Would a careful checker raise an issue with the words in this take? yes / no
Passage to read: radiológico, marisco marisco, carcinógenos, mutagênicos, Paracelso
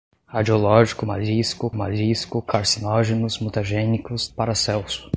no